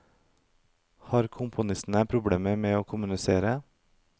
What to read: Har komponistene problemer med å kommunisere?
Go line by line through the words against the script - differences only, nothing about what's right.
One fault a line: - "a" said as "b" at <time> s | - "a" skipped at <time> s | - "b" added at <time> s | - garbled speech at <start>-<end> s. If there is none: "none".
none